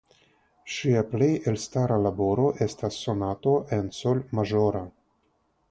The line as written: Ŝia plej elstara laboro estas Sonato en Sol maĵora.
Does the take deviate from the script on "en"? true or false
false